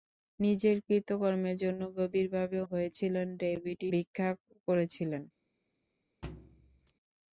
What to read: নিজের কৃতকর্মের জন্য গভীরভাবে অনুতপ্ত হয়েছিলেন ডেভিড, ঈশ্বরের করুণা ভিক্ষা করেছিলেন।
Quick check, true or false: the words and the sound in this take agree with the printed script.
false